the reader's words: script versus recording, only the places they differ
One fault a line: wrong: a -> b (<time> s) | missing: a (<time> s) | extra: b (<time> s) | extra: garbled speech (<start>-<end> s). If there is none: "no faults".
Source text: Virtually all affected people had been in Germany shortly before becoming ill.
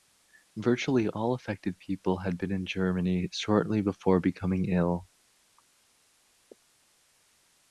no faults